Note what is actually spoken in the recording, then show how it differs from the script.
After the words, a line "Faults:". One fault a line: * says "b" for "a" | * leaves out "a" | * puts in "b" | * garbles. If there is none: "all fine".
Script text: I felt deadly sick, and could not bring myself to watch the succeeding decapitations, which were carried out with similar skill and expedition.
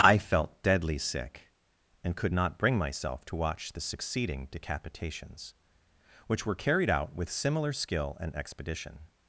I felt deadly sick, and could not bring myself to watch the succeeding decapitations, which were carried out with similar skill and expedition.
Faults:
all fine